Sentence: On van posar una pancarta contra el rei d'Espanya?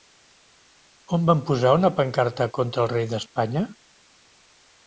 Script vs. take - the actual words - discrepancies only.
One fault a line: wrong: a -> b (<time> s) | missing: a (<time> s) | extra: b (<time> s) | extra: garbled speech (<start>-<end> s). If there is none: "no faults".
no faults